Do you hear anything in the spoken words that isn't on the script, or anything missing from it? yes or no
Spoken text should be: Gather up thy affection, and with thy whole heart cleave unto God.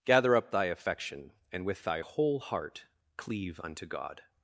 no